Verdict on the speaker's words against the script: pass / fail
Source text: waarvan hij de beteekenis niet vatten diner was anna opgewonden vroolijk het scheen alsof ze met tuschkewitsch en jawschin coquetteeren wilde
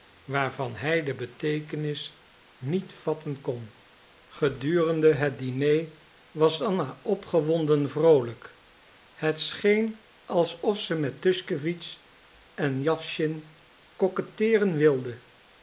fail